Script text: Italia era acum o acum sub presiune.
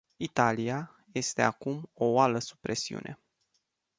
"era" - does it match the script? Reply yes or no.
no